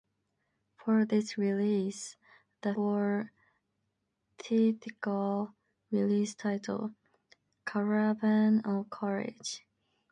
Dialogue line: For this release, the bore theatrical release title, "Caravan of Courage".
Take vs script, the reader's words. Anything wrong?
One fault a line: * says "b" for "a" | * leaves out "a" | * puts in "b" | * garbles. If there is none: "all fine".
all fine